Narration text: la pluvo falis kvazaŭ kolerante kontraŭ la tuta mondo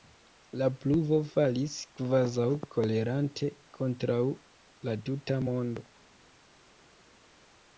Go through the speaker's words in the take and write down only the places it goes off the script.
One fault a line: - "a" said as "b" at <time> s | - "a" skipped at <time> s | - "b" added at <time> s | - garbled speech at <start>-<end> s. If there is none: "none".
none